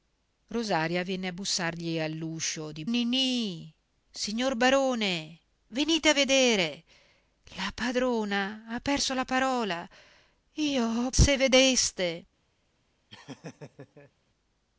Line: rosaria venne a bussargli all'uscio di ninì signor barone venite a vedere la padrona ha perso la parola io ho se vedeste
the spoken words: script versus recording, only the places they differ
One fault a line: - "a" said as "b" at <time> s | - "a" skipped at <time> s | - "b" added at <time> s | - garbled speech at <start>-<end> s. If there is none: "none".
none